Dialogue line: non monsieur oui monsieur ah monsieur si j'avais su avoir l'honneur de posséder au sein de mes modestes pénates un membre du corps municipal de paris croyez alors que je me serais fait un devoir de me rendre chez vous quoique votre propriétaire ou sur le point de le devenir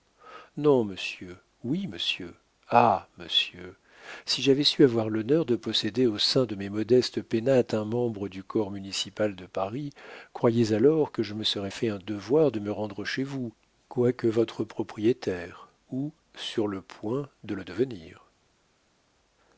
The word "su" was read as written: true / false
true